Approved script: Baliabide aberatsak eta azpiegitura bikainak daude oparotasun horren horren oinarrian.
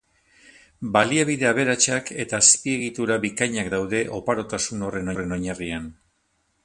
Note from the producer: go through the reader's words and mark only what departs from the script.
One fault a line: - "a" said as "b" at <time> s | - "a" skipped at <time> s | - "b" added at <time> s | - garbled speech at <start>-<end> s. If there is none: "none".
none